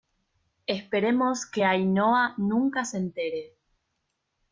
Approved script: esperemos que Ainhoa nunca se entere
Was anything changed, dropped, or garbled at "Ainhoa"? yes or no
no